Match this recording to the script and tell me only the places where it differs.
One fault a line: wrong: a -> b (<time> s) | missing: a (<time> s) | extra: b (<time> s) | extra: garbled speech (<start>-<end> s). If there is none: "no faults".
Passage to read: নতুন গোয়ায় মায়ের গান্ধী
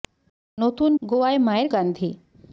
no faults